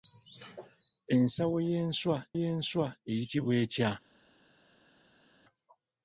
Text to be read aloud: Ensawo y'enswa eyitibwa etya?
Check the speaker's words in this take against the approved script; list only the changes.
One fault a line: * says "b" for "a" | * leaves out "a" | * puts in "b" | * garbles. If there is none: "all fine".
* puts in "y'enswa"